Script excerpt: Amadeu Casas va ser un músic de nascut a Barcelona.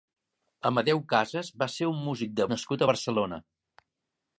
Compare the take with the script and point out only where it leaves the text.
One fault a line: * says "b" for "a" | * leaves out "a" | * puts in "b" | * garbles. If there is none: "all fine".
all fine